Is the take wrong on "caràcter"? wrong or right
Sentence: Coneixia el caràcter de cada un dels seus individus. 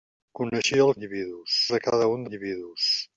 wrong